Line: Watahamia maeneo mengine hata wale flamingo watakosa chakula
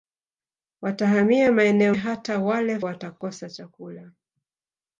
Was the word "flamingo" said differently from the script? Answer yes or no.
yes